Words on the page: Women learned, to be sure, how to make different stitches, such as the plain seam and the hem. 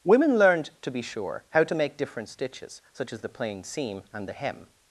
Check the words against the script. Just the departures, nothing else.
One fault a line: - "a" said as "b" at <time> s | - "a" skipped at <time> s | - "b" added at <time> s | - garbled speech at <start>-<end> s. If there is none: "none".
none